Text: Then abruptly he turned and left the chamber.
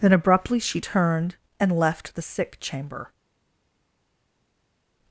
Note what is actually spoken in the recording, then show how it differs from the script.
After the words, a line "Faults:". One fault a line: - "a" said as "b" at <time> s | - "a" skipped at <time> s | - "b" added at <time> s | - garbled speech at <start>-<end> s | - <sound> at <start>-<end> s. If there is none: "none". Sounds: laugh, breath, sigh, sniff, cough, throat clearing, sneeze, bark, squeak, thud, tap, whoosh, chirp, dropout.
Then abruptly she turned and left the sick chamber.
Faults:
- "he" said as "she" at 0.6 s
- "sick" added at 2.2 s